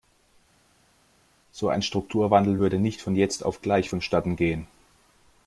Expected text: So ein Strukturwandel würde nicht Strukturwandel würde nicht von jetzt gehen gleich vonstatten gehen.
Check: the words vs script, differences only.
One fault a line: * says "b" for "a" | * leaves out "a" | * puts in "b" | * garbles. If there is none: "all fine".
* leaves out "Strukturwandel würde nicht"
* says "auf" for "gehen"